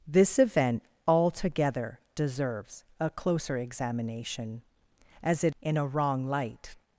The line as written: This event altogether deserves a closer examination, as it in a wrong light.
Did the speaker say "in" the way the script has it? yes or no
yes